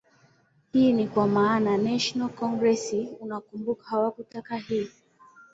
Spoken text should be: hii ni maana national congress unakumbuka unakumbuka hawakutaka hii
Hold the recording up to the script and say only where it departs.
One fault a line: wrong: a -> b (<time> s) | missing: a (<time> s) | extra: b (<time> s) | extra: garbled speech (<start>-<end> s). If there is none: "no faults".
extra: kwa (1.1 s)
missing: unakumbuka (3.8 s)